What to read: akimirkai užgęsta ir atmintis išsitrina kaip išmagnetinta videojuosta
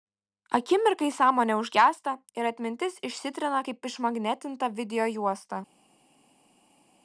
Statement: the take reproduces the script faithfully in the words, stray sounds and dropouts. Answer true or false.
false